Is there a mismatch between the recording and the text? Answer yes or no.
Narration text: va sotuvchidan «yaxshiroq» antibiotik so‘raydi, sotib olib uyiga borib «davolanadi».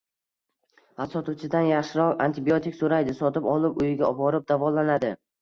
no